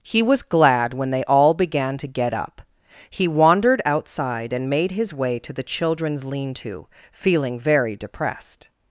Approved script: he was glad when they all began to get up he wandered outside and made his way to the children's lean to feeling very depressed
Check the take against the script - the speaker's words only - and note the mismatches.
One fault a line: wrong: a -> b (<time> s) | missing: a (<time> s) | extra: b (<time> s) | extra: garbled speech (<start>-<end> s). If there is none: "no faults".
no faults